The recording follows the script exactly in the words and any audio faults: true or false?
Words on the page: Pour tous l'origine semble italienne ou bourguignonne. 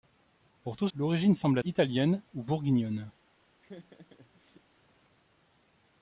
false